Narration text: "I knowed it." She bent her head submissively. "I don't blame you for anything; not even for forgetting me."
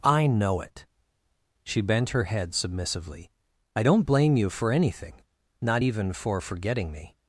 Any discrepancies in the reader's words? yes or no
yes